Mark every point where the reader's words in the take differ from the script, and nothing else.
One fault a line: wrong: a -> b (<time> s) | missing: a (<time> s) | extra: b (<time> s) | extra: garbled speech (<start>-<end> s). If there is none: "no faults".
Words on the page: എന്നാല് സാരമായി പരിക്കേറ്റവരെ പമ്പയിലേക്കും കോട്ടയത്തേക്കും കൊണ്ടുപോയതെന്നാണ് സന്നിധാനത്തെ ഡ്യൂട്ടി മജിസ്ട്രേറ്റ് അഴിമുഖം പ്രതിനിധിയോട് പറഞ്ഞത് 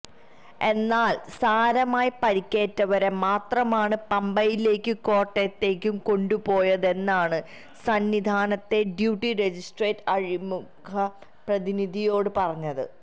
extra: മാത്രമാണ് (3.2 s)